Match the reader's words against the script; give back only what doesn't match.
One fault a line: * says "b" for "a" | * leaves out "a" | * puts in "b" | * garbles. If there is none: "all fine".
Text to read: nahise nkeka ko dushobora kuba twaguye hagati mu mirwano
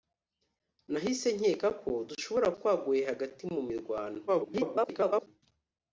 * leaves out "kuba"
* garbles